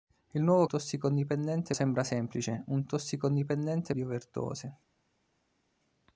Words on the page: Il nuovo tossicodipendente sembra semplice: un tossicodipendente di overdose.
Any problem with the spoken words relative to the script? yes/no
no